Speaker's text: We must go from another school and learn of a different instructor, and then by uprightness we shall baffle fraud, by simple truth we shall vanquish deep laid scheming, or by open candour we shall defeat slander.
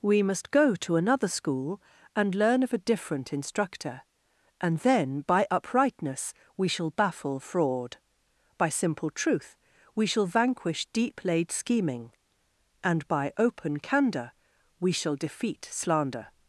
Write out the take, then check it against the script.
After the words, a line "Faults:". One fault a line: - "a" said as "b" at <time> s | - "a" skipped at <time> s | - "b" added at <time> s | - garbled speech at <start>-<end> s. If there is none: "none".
We must go to another school and learn of a different instructor, and then by uprightness we shall baffle fraud, by simple truth we shall vanquish deep laid scheming, and by open candour we shall defeat slander.
Faults:
- "from" said as "to" at 0.8 s
- "or" said as "and" at 12.8 s